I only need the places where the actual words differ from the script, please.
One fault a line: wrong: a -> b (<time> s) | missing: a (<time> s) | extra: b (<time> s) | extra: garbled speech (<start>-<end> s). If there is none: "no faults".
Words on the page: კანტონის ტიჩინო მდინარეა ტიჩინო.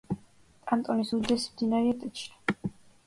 wrong: ტიჩინო -> უდიდესი (1.2 s)